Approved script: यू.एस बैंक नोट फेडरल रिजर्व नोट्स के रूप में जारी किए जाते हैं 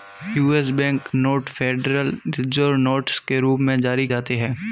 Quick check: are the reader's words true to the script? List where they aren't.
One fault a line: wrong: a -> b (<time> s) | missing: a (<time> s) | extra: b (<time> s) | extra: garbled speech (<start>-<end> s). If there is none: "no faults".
missing: किए (4.1 s)